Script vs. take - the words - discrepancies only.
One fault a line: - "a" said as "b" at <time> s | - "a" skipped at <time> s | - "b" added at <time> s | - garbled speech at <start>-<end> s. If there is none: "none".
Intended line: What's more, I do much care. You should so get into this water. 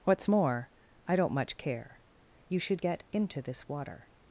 - "do" said as "don't" at 1.2 s
- "so" skipped at 2.8 s